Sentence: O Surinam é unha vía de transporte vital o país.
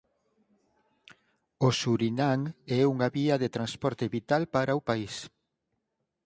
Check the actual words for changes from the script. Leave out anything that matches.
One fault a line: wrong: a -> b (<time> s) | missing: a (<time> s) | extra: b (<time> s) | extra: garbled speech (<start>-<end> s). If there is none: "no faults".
extra: para (4.5 s)